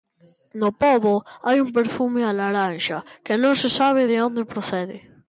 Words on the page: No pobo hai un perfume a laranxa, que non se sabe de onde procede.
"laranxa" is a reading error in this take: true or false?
false